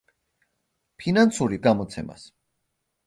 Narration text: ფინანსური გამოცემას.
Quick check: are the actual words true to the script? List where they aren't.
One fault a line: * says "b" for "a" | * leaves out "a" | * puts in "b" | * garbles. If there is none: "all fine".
all fine